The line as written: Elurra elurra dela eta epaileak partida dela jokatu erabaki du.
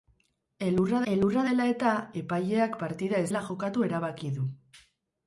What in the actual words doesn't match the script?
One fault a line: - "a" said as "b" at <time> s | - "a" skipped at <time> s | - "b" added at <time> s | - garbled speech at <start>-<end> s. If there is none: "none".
none